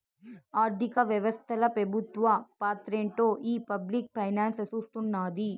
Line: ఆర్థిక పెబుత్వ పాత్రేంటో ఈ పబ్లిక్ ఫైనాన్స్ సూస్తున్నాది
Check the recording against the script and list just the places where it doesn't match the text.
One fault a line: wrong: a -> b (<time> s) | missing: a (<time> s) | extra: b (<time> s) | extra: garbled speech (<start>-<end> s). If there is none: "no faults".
extra: వ్యవస్తల (1.0 s)